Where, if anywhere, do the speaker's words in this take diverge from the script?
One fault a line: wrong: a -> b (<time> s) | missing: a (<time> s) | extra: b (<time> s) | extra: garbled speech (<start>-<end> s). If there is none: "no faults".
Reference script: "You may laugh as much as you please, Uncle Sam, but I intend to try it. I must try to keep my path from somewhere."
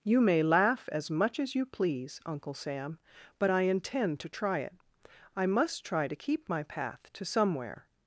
wrong: from -> to (7.1 s)